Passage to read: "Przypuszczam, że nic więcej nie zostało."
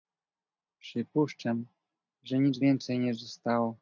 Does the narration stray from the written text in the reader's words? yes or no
no